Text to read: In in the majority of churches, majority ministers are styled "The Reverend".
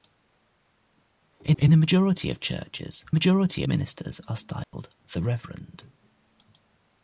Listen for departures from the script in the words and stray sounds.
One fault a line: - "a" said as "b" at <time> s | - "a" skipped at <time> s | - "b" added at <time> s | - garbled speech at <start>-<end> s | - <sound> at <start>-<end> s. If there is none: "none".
- dropout at 4.6-4.7 s